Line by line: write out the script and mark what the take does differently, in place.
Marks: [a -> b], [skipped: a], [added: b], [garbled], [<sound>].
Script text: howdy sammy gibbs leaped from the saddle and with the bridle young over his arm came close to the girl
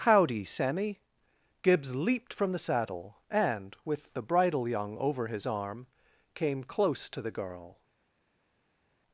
howdy sammy gibbs leaped from the saddle and with the bridle young over his arm came close to the girl